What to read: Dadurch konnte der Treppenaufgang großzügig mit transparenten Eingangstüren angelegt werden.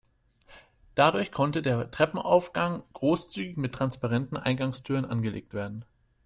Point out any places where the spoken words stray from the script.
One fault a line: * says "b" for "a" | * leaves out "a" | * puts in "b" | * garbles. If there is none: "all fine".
all fine